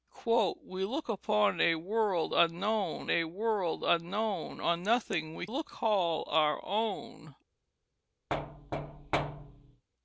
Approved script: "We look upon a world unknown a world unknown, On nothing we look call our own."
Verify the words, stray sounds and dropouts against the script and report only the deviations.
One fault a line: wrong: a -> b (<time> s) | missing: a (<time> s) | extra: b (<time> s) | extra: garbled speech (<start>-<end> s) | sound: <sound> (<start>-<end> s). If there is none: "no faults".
sound: thud (8.3-9.8 s)